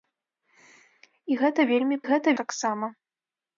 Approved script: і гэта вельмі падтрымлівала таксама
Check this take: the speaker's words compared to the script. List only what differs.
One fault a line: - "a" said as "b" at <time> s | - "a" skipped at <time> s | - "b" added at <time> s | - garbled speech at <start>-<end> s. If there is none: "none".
- "падтрымлівала" said as "гэта" at 2.1 s